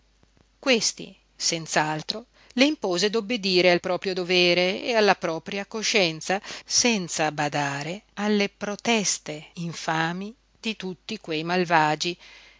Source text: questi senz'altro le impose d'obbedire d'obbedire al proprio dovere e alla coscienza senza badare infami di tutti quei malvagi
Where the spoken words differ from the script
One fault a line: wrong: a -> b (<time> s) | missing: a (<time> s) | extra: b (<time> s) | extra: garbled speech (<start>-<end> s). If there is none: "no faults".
missing: d'obbedire (3.7 s)
extra: propria (5.2 s)
extra: alle proteste (8.1 s)